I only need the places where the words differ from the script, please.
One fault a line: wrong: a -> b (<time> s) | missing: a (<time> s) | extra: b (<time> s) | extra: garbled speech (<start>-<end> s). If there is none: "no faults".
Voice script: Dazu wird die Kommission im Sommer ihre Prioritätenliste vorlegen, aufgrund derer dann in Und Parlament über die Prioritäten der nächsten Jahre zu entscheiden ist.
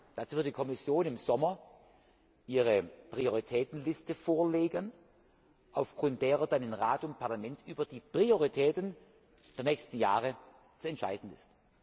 extra: Rat (6.7 s)